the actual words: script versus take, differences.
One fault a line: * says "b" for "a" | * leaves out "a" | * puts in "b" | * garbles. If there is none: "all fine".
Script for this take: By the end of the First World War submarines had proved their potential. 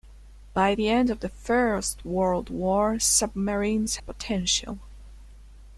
* leaves out "had proved their"